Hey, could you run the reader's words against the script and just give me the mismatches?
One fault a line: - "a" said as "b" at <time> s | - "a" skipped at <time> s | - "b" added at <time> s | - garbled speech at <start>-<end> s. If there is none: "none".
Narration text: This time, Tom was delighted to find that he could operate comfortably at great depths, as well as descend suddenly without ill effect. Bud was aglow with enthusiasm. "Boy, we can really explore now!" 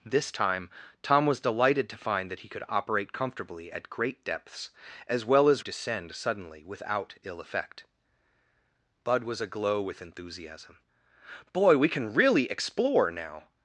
none